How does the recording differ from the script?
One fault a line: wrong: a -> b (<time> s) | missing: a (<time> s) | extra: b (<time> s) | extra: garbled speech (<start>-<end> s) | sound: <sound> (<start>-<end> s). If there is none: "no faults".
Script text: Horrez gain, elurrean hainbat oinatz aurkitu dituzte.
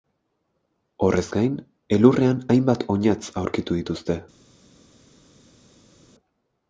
no faults